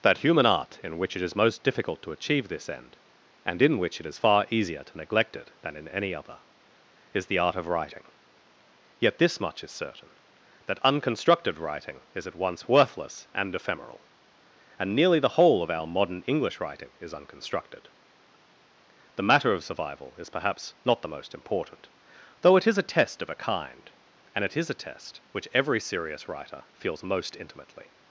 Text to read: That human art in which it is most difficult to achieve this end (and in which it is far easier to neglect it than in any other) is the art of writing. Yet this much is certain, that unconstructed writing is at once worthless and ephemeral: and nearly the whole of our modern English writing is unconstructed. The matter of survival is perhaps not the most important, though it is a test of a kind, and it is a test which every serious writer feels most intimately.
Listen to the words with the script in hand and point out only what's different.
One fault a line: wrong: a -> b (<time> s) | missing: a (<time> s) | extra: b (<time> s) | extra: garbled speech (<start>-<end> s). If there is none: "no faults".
no faults